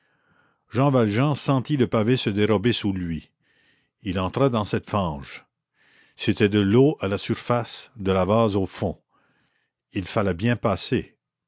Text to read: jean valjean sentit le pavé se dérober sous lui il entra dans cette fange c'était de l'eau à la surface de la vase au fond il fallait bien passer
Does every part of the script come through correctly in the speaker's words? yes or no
yes